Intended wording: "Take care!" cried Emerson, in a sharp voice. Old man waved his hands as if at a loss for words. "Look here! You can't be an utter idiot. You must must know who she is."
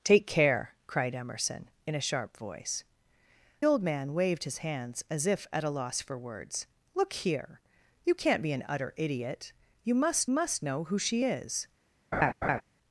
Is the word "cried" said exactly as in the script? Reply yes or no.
yes